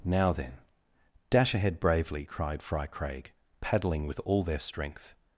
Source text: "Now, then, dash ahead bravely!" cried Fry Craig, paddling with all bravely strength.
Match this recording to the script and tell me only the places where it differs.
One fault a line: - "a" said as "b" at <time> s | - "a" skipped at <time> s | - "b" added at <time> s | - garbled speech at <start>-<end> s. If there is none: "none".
- "bravely" said as "their" at 4.4 s